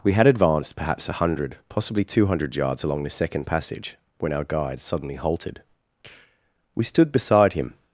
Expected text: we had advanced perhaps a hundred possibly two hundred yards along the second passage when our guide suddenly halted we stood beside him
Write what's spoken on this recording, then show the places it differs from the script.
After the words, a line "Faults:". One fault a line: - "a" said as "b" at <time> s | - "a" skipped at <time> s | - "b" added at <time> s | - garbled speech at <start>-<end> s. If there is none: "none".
we had advanced perhaps a hundred possibly two hundred yards along the second passage when our guide suddenly halted we stood beside him
Faults:
none